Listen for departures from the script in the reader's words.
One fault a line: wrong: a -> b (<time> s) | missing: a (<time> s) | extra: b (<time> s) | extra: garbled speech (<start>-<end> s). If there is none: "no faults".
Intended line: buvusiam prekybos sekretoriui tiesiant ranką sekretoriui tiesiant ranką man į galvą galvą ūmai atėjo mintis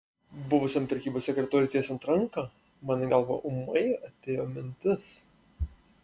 missing: sekretoriui tiesiant ranką (2.5 s)
missing: galvą (3.4 s)